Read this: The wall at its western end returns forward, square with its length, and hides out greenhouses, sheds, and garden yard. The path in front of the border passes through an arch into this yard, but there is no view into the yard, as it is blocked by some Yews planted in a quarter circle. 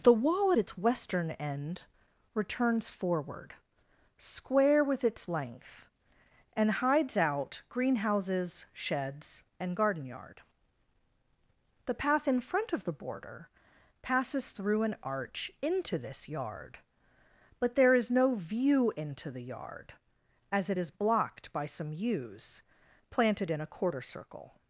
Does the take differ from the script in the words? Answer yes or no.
no